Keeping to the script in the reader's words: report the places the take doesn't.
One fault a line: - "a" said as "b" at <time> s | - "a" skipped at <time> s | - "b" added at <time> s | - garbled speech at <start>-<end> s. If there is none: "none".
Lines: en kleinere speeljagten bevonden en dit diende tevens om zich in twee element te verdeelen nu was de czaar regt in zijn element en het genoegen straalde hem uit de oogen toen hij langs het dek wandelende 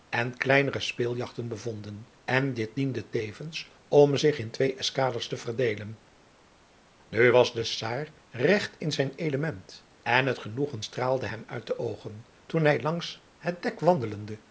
- "element" said as "eskaders" at 4.7 s